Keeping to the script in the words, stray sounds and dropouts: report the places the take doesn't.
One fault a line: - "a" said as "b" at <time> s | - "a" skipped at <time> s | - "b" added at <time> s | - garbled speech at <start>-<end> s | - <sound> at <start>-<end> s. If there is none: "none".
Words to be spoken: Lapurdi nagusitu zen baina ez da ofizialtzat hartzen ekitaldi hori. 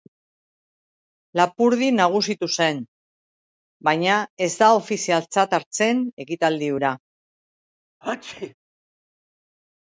- "hori" said as "hura" at 6.8 s
- sneeze at 8.0-8.5 s